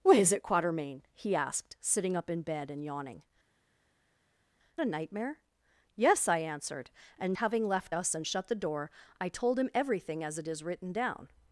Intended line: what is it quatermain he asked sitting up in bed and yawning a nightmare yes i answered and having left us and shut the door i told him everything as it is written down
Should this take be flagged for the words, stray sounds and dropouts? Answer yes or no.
no